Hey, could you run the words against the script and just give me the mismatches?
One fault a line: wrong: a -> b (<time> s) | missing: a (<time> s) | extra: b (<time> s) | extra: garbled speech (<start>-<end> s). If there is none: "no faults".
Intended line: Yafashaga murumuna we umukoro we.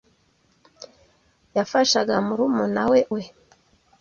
missing: umukoro (3.0 s)